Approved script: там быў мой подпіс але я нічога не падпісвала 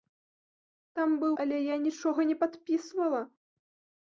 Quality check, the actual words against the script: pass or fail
fail